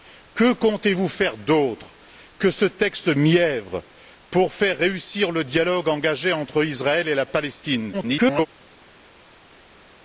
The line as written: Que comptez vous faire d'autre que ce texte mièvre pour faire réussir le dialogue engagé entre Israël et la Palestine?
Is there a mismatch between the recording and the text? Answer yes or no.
yes